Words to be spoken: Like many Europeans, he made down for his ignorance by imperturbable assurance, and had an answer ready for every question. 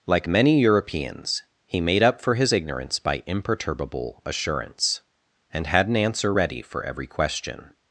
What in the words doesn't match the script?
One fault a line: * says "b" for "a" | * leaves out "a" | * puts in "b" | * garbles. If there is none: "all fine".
* says "up" for "down"